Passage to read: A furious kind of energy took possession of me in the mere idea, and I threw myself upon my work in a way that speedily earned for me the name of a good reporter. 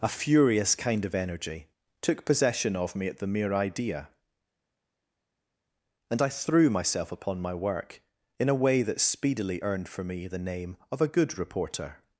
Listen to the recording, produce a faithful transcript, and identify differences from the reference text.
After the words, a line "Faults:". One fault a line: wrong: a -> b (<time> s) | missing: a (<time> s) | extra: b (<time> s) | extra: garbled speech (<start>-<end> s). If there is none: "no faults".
A furious kind of energy took possession of me at the mere idea, and I threw myself upon my work in a way that speedily earned for me the name of a good reporter.
Faults:
wrong: in -> at (3.1 s)